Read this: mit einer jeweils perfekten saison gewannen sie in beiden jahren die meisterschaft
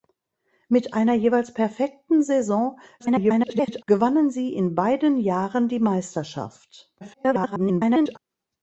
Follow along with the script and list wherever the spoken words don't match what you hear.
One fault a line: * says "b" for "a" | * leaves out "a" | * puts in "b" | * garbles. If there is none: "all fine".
* garbles
* garbles